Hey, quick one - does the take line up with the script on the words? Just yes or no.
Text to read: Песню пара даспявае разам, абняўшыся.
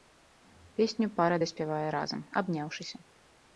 yes